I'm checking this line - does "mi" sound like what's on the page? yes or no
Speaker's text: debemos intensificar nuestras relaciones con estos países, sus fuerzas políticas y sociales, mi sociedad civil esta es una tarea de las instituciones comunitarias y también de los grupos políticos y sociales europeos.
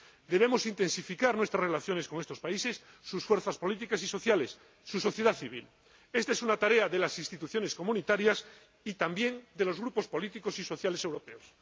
no